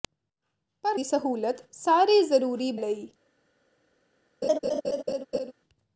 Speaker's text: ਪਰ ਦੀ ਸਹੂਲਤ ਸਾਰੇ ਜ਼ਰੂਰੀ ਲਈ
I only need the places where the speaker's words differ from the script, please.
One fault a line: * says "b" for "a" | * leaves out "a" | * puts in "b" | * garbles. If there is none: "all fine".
all fine